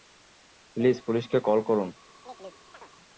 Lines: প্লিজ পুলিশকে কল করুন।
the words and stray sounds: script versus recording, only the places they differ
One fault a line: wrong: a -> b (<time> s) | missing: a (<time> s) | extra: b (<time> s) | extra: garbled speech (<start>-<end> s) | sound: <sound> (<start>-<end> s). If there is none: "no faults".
sound: chirp (2.2-2.9 s)